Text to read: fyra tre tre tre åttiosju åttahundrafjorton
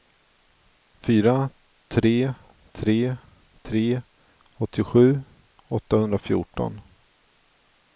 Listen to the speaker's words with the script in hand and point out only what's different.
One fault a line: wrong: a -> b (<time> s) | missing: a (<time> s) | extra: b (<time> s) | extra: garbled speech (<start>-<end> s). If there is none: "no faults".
no faults